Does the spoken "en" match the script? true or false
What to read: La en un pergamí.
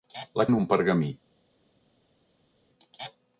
true